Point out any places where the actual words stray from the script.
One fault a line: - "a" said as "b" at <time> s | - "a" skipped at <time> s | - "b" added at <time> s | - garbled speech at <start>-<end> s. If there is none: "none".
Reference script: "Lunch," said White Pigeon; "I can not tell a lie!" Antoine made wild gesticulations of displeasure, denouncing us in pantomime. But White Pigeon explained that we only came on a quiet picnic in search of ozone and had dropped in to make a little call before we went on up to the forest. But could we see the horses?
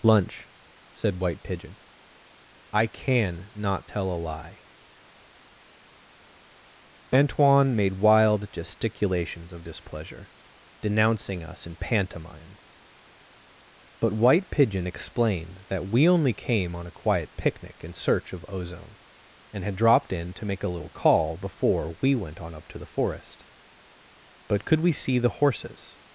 none